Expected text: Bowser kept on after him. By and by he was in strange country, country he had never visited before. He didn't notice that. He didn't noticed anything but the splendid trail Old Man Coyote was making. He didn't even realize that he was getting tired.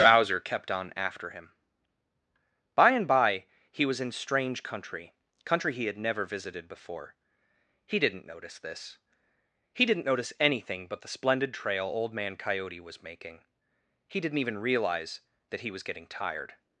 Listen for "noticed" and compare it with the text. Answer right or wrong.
wrong